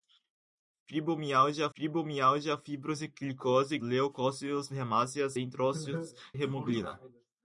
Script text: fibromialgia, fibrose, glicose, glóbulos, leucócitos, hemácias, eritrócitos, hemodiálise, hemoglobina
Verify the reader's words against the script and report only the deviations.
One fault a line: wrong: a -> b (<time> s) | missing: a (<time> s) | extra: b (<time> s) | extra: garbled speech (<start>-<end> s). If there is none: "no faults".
extra: fibromialgia (1.7 s)
missing: glóbulos (3.8 s)
missing: hemodiálise (6.1 s)